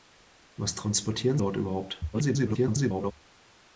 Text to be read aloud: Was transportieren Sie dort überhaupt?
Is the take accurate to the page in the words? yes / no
no